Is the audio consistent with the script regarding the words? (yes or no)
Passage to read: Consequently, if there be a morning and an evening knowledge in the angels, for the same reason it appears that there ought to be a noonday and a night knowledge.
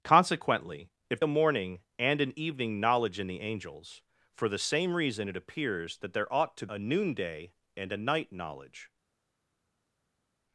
no